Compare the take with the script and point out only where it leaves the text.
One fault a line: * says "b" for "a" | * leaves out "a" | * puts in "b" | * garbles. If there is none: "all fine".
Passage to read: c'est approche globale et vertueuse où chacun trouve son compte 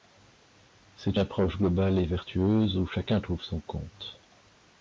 all fine